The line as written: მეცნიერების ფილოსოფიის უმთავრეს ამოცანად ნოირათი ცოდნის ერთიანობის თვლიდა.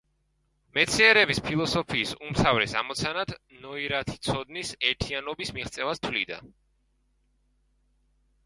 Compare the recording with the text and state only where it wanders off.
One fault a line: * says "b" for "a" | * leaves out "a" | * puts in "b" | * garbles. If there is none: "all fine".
* puts in "მიღწევას"